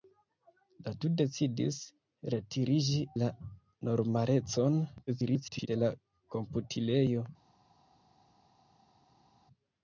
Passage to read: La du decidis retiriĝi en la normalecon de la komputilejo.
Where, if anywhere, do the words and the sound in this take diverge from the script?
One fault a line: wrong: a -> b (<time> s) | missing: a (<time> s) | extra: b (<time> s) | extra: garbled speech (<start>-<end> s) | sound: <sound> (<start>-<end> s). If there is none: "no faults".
missing: en (3.0 s)
extra: garbled speech (5.1-5.7 s)